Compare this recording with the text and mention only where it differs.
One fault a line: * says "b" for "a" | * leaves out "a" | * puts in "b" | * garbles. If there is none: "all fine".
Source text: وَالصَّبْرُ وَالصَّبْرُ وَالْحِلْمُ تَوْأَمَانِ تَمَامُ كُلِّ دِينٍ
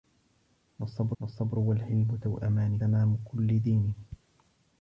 all fine